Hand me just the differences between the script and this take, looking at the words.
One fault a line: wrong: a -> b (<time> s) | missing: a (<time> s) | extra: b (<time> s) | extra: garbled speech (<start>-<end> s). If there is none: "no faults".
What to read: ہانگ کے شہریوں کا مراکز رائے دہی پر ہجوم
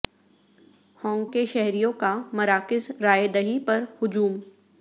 no faults